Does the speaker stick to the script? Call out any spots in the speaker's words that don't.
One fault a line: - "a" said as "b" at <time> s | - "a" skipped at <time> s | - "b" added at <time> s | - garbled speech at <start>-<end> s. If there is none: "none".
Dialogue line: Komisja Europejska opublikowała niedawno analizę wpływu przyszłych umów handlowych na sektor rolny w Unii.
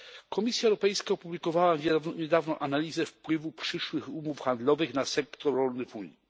none